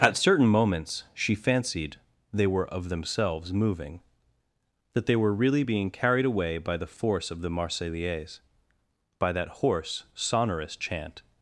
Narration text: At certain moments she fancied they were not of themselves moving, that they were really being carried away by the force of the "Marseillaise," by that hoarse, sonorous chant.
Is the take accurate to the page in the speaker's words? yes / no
no